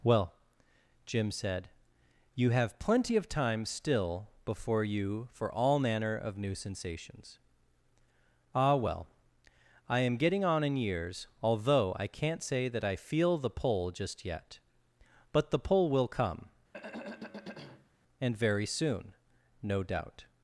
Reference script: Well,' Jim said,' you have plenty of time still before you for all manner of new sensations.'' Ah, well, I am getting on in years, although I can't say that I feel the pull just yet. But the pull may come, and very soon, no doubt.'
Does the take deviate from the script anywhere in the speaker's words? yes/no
yes